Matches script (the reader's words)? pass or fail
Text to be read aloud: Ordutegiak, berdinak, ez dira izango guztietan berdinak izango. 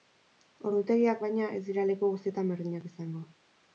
fail